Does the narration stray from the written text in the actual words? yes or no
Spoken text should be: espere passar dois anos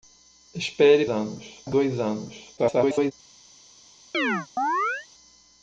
yes